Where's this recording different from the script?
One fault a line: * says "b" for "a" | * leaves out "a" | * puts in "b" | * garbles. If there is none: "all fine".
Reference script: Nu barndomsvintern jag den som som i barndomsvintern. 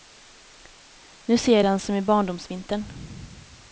* says "ser" for "barndomsvintern"
* leaves out "som"